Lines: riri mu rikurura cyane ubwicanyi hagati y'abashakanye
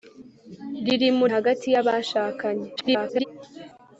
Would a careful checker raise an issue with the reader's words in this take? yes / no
yes